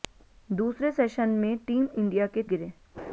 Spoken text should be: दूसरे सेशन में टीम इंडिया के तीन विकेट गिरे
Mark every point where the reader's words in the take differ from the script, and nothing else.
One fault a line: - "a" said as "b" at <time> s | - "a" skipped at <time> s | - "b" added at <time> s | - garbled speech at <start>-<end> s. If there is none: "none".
- "तीन विकेट" skipped at 2.4 s